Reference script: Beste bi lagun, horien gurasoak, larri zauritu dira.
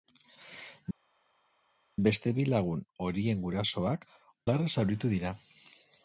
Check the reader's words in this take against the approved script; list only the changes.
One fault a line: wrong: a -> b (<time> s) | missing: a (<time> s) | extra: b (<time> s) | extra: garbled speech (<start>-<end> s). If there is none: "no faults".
no faults